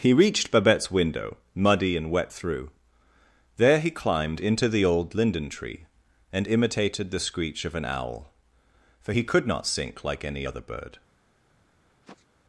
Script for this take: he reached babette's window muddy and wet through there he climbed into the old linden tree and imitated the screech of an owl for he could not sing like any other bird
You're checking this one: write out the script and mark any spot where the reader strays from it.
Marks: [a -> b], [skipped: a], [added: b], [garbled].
he reached babette's window muddy and wet through there he climbed into the old linden tree and imitated the screech of an owl for he could not [sing -> sink] like any other bird